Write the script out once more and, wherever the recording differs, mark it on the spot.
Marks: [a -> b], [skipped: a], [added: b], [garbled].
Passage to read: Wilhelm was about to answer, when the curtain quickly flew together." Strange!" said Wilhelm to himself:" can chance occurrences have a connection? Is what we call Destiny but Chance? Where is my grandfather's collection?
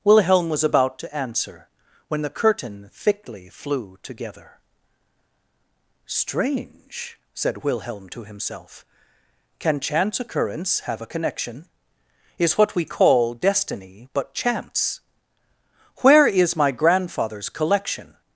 Wilhelm was about to answer, when the curtain [quickly -> thickly] flew together." Strange!" said Wilhelm to himself:" can chance [occurrences -> occurrence] have a connection? Is what we call Destiny but Chance? Where is my grandfather's collection?